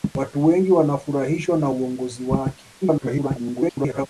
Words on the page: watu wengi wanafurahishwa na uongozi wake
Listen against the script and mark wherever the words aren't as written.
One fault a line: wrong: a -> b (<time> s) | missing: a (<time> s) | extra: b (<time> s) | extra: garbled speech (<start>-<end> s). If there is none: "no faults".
extra: garbled speech (2.8-4.1 s)